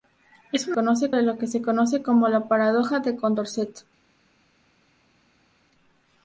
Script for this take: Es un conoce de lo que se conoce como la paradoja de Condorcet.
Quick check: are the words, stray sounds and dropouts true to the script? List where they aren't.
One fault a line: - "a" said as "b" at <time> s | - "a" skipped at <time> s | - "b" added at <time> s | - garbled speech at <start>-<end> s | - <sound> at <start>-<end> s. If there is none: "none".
none